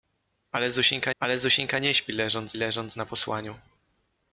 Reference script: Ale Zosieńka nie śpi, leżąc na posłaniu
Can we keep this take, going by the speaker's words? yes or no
no